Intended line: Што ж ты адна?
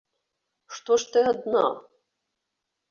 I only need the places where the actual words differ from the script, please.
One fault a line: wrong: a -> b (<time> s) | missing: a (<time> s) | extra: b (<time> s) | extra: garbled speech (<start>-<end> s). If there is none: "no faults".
no faults